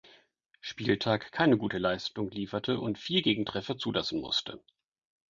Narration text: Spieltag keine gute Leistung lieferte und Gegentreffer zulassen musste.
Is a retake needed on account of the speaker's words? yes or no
yes